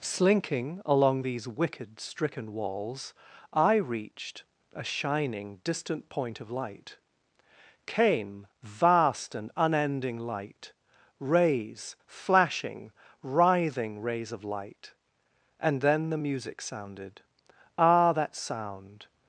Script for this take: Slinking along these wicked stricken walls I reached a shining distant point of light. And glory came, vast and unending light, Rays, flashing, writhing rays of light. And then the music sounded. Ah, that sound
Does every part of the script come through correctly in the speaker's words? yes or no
no